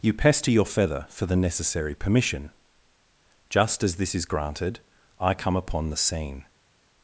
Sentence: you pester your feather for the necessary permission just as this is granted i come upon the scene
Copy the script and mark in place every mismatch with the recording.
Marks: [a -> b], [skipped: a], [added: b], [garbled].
you pester your feather for the necessary permission just as this is granted i come upon the scene